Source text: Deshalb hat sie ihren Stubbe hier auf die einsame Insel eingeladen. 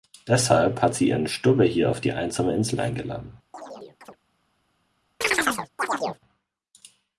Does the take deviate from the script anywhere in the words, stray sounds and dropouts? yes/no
yes